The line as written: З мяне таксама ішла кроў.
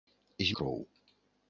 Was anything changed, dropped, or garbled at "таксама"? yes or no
yes